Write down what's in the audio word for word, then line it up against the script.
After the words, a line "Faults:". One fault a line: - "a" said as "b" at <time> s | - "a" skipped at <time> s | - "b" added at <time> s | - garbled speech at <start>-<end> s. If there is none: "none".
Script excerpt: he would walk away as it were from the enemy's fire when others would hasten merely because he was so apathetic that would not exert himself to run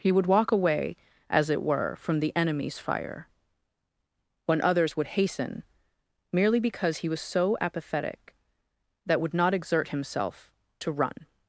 he would walk away as it were from the enemy's fire when others would hasten merely because he was so apathetic that would not exert himself to run
Faults:
none